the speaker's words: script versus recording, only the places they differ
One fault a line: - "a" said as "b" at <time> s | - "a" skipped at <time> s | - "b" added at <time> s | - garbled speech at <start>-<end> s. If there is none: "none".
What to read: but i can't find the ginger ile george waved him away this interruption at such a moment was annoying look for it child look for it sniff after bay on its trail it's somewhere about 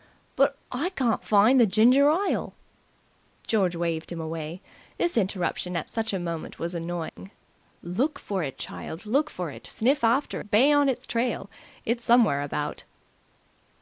none